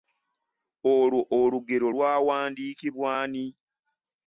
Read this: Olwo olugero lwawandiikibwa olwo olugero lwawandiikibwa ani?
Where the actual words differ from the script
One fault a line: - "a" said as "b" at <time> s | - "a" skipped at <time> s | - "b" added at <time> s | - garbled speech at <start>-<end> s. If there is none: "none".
- "olwo olugero lwawandiikibwa" skipped at 3.1 s